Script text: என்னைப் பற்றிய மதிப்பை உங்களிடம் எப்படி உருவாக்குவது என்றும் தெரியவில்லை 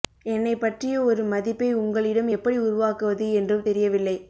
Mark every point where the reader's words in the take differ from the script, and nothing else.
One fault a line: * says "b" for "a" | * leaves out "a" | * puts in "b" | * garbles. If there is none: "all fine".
* puts in "ஒரு"